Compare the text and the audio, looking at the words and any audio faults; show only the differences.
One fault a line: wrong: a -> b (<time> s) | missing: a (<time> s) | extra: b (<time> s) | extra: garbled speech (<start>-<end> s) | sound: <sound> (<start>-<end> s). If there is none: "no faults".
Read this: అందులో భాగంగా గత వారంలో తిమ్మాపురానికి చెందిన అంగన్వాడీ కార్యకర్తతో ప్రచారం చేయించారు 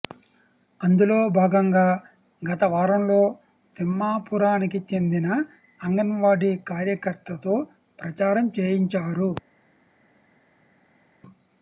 no faults